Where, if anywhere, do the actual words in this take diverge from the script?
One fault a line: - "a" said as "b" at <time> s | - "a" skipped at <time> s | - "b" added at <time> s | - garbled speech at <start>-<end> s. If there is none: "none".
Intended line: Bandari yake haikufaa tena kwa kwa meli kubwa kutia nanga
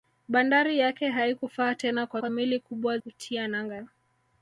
none